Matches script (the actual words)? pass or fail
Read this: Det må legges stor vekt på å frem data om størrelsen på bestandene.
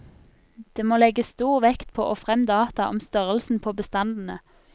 pass